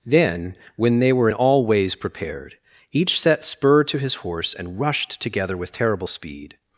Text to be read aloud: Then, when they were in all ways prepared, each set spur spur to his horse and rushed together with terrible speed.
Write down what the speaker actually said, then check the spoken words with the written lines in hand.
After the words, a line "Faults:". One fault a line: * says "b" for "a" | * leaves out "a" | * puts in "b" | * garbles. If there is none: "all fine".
Then, when they were in all ways prepared, each set spur to his horse and rushed together with terrible speed.
Faults:
* leaves out "spur"